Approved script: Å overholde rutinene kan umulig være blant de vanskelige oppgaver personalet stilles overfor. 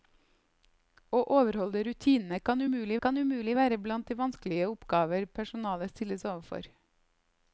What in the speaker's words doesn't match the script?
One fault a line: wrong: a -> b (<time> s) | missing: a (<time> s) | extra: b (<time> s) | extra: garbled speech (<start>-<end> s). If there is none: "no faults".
extra: kan umulig (3.1 s)